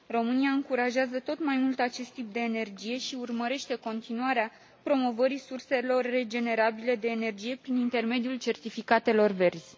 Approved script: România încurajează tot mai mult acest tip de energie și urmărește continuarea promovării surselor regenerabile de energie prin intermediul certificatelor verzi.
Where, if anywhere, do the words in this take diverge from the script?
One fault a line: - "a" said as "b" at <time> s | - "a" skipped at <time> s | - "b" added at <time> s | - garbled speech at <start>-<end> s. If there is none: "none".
none